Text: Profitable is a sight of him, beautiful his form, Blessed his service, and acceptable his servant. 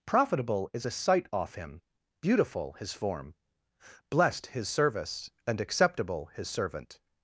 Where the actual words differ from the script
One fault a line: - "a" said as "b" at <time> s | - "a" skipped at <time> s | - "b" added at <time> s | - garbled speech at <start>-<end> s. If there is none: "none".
- "of" said as "off" at 1.3 s